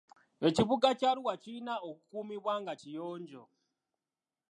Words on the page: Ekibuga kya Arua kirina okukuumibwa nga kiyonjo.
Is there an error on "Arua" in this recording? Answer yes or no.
no